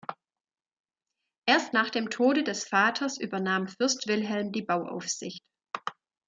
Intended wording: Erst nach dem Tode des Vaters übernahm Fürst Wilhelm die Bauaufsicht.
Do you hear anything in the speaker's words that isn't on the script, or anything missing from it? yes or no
no